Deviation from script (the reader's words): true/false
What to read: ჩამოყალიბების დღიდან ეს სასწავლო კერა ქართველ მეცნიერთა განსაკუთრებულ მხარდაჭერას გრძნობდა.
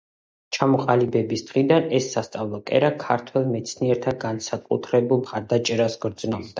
false